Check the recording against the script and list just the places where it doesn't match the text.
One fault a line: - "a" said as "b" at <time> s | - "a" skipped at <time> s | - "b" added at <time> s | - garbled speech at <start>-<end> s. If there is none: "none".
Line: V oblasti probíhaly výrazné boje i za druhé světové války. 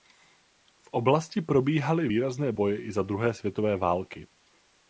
none